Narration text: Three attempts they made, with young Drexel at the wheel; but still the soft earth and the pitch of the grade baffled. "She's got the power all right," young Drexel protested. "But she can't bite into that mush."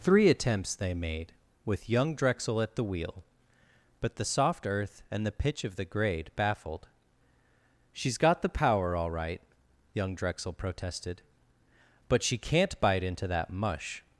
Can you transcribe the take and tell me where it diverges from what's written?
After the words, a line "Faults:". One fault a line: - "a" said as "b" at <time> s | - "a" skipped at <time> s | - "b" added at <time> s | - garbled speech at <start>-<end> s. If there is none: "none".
Three attempts they made, with young Drexel at the wheel; but the soft earth and the pitch of the grade baffled. "She's got the power all right," young Drexel protested. "But she can't bite into that mush."
Faults:
- "still" skipped at 4.2 s